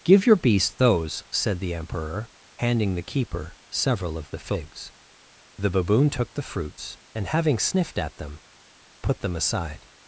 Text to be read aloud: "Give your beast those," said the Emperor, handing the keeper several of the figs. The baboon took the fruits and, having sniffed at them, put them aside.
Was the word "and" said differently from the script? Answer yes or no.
no